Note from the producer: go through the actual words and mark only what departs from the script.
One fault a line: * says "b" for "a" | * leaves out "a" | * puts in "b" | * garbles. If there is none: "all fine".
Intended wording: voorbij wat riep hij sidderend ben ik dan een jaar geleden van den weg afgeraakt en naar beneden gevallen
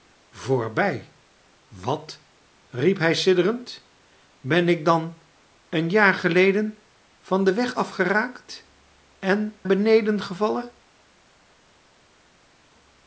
* leaves out "naar"